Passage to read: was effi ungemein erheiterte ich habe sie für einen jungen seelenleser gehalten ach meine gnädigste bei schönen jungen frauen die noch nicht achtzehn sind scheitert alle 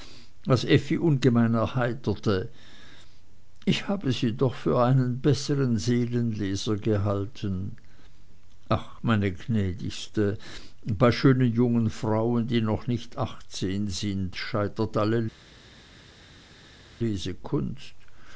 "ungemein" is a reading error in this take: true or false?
false